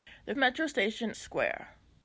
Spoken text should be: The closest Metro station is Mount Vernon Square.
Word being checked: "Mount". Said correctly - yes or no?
no